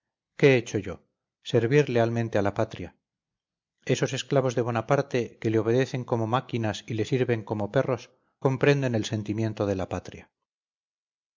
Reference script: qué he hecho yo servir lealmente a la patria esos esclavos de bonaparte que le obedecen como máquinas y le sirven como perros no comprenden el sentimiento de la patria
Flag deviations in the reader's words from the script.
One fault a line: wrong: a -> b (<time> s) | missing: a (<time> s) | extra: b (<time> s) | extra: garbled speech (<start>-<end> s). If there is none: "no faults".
missing: no (8.1 s)